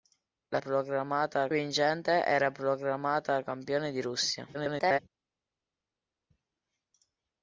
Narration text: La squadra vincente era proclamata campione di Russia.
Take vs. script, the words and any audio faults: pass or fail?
fail